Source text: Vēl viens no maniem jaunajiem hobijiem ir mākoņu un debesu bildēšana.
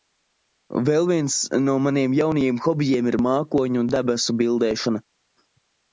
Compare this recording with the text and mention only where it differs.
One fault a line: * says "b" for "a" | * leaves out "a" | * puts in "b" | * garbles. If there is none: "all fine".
all fine